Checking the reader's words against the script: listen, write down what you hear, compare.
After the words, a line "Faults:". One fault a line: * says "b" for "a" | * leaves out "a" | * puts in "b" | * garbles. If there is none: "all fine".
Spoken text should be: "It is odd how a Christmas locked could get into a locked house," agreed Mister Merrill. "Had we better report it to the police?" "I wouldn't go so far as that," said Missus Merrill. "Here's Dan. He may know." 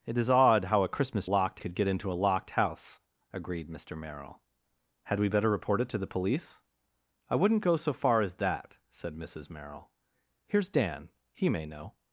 "It is odd how a Christmas locked could get into a locked house," agreed Mister Merrill. "Had we better report it to the police?" "I wouldn't go so far as that," said Missus Merrill. "Here's Dan. He may know."
Faults:
all fine